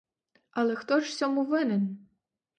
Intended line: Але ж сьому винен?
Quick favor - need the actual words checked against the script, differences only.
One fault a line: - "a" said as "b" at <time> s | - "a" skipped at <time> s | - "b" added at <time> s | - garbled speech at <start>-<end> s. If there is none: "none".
- "хто" added at 0.7 s